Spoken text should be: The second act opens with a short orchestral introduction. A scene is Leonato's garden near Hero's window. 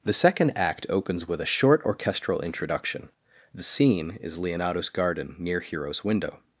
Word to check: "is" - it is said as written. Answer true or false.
true